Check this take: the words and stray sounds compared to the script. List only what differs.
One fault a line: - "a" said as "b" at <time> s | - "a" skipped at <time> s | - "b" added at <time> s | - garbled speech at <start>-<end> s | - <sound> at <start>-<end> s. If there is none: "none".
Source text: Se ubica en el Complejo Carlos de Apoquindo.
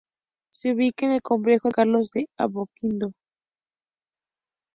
none